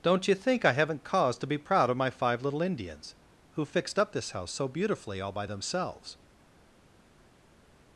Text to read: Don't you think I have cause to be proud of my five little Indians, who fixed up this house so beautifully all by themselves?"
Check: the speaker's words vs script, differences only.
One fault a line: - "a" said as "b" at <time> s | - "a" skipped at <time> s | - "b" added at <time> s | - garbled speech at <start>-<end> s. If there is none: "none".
- "have" said as "haven't" at 0.7 s